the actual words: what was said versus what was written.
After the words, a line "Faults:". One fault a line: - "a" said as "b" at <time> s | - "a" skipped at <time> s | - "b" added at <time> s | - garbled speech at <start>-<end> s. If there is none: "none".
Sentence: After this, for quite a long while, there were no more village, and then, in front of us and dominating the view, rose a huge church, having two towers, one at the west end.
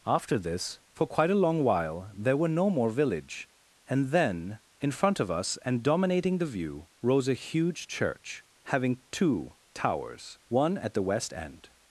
After this, for quite a long while, there were no more village, and then, in front of us and dominating the view, rose a huge church, having two towers, one at the west end.
Faults:
none